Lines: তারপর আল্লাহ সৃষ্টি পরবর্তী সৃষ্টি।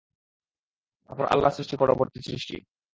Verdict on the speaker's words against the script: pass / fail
pass